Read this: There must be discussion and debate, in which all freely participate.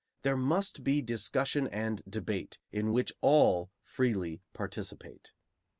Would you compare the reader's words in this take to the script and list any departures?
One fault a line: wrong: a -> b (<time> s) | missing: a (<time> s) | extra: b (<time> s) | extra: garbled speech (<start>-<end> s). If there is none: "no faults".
no faults